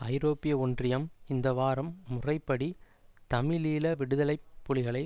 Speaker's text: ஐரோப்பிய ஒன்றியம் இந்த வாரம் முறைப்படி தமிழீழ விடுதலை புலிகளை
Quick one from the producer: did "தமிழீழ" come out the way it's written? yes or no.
yes